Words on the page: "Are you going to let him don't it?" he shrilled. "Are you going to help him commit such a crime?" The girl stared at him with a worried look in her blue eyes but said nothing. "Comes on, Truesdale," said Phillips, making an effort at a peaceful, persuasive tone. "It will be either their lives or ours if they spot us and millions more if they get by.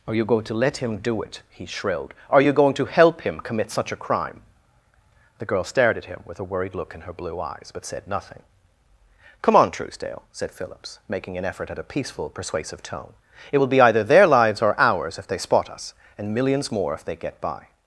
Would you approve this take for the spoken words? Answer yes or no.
no